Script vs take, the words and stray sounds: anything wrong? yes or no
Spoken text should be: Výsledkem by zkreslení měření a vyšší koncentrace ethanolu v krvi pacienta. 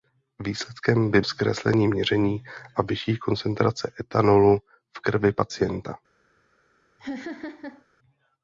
yes